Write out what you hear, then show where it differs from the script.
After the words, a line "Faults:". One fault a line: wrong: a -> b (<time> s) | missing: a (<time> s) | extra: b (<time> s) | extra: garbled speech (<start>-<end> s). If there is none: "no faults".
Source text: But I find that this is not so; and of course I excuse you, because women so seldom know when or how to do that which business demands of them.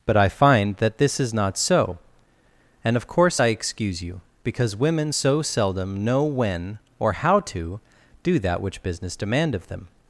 But I find that this is not so; and of course I excuse you, because women so seldom know when or how to do that which business demand of them.
Faults:
wrong: demands -> demand (9.2 s)